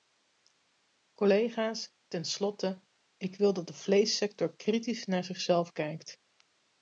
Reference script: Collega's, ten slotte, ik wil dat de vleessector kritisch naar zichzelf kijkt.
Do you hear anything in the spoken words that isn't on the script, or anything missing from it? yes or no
no